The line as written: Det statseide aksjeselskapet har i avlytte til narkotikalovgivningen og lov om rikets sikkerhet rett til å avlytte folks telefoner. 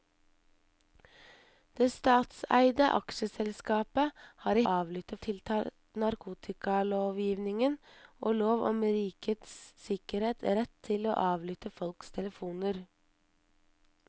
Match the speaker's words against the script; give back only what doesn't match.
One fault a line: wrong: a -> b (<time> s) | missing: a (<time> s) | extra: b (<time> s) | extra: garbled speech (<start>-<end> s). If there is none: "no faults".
no faults